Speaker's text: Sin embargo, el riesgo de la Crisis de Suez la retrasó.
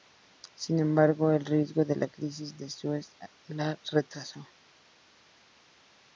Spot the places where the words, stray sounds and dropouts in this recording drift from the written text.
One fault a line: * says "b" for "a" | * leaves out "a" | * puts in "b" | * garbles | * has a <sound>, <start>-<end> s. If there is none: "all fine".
all fine